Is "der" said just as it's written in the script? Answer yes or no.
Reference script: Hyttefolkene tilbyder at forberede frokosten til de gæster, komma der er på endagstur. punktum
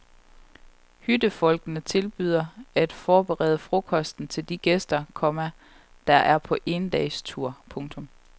yes